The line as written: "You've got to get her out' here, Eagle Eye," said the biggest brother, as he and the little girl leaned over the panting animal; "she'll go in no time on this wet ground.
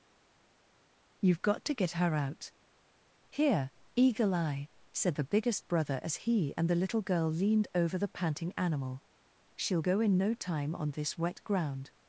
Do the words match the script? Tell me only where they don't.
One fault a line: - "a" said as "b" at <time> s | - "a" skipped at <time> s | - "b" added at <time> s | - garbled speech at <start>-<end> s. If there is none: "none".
none